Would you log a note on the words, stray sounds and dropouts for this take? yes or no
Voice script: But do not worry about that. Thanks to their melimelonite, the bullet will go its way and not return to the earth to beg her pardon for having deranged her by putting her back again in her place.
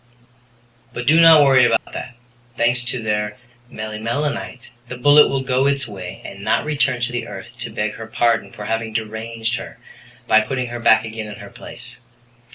yes